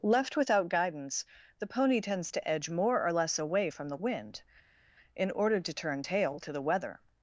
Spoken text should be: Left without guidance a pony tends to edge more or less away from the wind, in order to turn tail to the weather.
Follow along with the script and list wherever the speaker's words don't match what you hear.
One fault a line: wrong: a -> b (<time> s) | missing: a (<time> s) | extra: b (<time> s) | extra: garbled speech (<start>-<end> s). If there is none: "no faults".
wrong: a -> the (1.6 s)